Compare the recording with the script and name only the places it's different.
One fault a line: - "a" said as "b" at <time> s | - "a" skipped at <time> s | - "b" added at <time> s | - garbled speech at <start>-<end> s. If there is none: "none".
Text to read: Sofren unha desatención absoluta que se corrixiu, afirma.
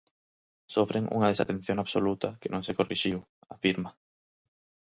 - "non" added at 2.5 s